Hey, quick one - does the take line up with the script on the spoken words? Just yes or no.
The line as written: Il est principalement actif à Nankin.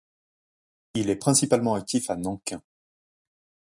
yes